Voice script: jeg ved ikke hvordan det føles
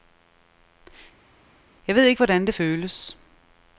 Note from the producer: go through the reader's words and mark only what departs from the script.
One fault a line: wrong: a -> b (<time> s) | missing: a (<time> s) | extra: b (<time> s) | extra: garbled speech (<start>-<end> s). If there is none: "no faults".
no faults